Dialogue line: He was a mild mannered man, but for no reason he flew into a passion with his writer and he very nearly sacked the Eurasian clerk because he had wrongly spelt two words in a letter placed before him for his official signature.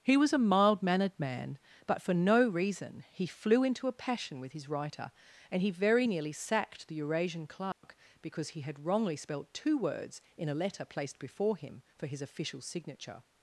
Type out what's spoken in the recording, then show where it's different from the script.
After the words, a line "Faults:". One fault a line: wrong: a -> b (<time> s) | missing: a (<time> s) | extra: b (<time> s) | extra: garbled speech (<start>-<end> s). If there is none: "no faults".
He was a mild mannered man, but for no reason he flew into a passion with his writer and he very nearly sacked the Eurasian clerk because he had wrongly spelt two words in a letter placed before him for his official signature.
Faults:
no faults